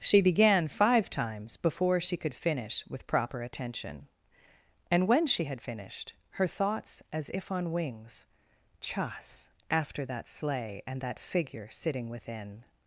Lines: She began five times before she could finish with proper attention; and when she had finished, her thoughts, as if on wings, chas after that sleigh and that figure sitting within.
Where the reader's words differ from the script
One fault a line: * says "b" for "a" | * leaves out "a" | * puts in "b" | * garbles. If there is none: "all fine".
all fine